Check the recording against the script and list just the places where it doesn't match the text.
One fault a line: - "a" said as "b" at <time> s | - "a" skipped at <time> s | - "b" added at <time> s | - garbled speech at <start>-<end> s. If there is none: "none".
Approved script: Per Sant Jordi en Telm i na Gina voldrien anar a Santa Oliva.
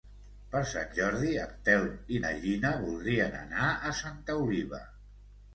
none